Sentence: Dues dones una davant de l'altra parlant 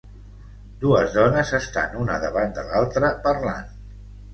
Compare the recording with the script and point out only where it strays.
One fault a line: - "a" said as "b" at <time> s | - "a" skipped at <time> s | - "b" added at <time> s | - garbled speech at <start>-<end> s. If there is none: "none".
- "estan" added at 1.6 s